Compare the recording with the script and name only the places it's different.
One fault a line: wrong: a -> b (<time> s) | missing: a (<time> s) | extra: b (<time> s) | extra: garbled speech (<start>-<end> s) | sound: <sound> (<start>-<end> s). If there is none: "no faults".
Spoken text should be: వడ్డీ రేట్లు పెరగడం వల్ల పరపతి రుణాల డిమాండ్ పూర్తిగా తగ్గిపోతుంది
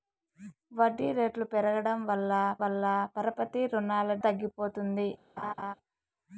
extra: వల్ల (2.6 s)
missing: డిమాండ్ పూర్తిగా (4.1 s)
sound: laugh (5.4-5.7 s)